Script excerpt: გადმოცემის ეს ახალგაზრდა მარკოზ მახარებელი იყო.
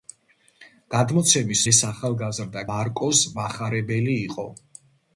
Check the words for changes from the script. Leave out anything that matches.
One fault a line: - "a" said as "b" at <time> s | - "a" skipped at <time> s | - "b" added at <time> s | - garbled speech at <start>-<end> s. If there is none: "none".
none